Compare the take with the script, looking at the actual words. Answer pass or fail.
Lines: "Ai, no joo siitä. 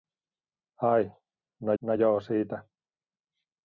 fail